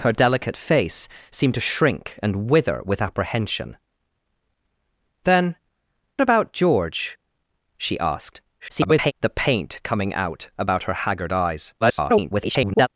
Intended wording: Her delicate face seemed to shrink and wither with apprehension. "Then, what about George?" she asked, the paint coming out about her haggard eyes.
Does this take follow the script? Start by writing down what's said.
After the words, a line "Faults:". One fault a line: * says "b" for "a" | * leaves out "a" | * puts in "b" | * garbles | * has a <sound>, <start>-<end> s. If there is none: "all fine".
Her delicate face seemed to shrink and wither with apprehension. "Then, about George?" she asked, [garbled] the paint coming out about her haggard eyes. [garbled]
Faults:
* leaves out "what"
* garbles
* garbles